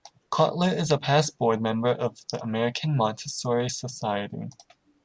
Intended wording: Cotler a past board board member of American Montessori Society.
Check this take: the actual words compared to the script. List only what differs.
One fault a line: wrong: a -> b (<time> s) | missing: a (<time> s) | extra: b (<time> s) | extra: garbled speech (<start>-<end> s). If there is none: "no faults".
extra: is (0.8 s)
missing: board (1.6 s)
extra: the (2.3 s)